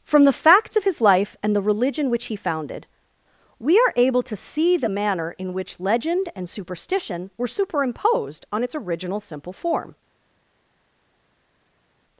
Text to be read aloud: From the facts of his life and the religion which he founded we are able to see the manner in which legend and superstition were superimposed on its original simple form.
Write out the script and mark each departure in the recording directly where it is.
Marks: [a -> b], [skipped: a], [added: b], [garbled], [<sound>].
From the facts of his life and the religion which he founded we are able to see the manner in which legend and superstition were superimposed on its original simple form.